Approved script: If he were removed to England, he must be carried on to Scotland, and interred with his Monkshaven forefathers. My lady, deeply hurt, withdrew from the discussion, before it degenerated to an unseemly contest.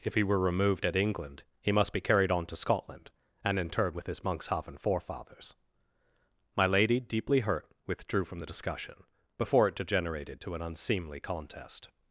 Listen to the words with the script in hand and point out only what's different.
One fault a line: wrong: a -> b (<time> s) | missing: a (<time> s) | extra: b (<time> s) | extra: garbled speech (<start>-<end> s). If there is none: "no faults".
wrong: to -> at (0.8 s)